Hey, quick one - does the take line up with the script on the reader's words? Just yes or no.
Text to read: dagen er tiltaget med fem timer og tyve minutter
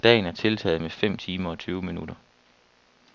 yes